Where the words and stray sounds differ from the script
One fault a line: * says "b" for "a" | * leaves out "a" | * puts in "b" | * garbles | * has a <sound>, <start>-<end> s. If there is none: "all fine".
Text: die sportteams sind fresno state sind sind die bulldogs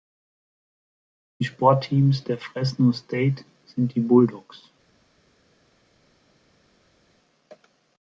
* says "der" for "sind"
* leaves out "sind"